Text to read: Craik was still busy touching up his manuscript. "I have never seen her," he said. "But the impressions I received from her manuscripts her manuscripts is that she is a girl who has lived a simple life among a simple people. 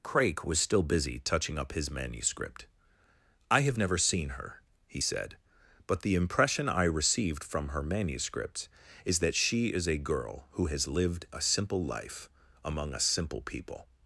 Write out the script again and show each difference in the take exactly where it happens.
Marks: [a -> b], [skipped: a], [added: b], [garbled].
Craik was still busy touching up his manuscript. "I have never seen her," he said. "But the [impressions -> impression] I received from her manuscripts [skipped: her manuscripts] is that she is a girl who has lived a simple life among a simple people.